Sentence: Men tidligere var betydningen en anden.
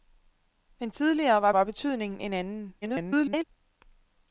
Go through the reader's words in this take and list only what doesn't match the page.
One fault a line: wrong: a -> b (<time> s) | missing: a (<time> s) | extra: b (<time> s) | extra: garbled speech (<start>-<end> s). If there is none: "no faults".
extra: var (1.5 s)
extra: garbled speech (2.8-3.4 s)